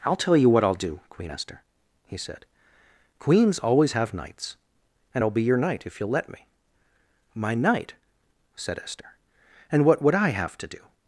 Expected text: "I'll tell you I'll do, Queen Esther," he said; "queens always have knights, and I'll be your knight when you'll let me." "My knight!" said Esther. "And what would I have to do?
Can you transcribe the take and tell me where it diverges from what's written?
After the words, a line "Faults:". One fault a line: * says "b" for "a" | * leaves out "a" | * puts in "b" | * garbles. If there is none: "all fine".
"I'll tell you what I'll do, Queen Esther," he said; "queens always have knights, and I'll be your knight if you'll let me." "My knight!" said Esther. "And what would I have to do?
Faults:
* puts in "what"
* says "if" for "when"